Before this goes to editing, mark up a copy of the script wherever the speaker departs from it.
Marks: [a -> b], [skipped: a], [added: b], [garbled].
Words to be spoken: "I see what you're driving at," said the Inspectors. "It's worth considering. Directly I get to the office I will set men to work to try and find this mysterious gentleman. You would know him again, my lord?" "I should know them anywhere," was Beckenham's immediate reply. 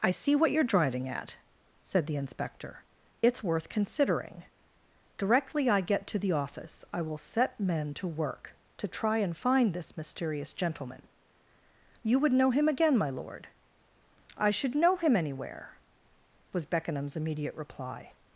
"I see what you're driving at," said the [Inspectors. -> Inspector] "It's worth considering. Directly I get to the office I will set men to work to try and find this mysterious gentleman. You would know him again, my lord?" "I should know [them -> him] anywhere," was Beckenham's immediate reply.